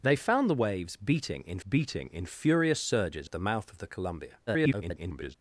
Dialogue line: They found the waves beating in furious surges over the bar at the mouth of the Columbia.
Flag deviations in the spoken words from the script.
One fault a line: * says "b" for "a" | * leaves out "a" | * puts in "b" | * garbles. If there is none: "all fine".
* puts in "beating in"
* leaves out "over the bar"
* garbles